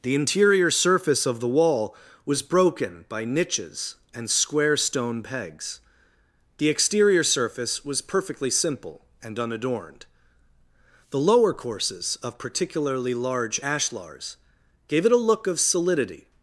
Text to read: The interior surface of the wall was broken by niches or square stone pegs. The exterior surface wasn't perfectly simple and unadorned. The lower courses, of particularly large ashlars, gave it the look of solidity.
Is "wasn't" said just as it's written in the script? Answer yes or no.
no